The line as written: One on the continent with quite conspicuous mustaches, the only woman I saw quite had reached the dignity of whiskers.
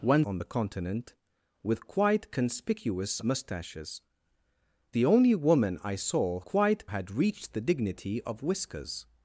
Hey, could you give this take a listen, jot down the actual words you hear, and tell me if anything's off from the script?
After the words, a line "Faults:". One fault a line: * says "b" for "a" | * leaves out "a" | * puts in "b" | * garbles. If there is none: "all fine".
One on the continent with quite conspicuous mustaches, the only woman I saw quite had reached the dignity of whiskers.
Faults:
all fine